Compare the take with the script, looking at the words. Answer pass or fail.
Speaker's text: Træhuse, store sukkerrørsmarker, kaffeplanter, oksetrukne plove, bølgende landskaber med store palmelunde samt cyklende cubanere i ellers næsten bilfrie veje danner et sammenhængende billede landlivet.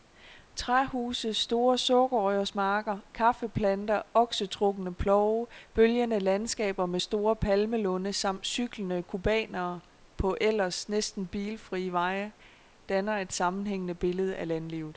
fail